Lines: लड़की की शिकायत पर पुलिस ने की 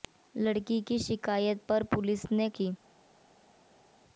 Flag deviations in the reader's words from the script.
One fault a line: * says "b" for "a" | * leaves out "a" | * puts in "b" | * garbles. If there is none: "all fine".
all fine